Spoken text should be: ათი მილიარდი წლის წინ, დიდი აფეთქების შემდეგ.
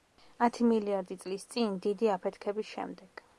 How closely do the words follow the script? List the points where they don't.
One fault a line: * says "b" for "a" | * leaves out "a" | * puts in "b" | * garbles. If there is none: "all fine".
all fine